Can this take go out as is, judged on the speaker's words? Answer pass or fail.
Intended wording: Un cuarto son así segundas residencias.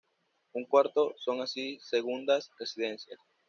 pass